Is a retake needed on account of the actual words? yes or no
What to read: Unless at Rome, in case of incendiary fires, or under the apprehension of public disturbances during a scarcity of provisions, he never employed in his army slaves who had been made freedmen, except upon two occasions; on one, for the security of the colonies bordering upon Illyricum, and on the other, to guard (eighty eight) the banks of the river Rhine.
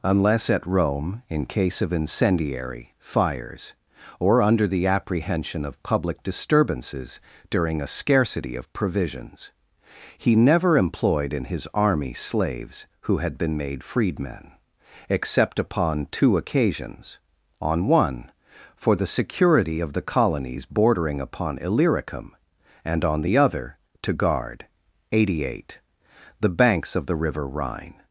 no